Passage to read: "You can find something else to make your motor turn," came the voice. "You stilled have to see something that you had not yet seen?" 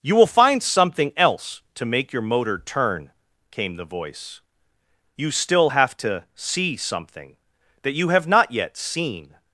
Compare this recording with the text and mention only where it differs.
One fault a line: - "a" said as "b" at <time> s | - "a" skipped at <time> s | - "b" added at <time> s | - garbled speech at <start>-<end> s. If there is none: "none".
- "can" said as "will" at 0.1 s
- "stilled" said as "still" at 5.3 s
- "had" said as "have" at 8.1 s